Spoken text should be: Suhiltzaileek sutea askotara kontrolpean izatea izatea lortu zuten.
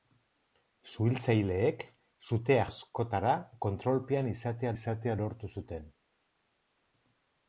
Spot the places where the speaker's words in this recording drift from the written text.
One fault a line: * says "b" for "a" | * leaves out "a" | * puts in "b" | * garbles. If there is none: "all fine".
all fine